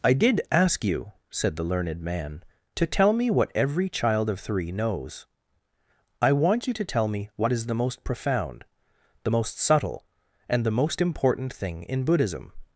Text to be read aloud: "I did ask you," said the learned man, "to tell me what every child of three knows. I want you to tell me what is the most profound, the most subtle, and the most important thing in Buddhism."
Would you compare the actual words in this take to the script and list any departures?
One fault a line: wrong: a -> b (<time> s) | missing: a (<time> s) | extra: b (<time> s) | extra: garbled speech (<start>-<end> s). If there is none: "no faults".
no faults